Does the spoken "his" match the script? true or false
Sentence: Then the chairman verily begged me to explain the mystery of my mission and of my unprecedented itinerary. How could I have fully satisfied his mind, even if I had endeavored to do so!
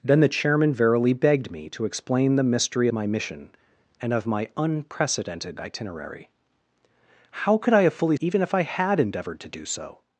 false